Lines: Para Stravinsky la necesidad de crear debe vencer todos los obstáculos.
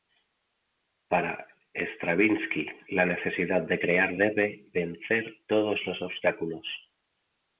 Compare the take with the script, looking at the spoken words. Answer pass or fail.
pass